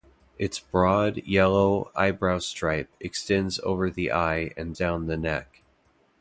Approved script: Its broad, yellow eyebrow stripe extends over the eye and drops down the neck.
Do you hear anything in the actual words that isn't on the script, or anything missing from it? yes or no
yes